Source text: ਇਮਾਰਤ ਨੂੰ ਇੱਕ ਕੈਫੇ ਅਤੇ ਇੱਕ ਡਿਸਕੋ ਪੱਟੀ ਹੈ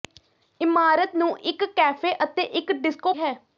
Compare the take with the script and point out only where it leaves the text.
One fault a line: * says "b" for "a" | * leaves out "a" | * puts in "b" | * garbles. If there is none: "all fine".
* leaves out "ਪੱਟੀ"